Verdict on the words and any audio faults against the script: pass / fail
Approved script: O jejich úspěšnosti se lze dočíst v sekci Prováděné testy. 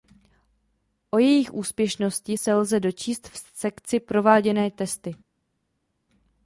pass